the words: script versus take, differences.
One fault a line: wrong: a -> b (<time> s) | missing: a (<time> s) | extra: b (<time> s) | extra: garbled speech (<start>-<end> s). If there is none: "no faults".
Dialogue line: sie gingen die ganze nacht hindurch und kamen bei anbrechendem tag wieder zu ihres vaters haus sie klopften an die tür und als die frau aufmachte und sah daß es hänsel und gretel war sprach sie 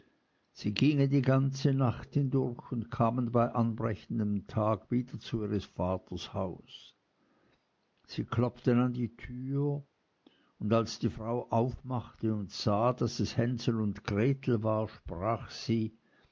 no faults